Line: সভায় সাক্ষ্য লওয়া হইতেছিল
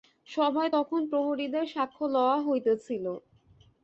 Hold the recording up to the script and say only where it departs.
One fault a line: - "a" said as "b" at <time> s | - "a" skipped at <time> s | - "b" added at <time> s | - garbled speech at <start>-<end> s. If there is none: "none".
- "তখন প্রহরীদের" added at 0.7 s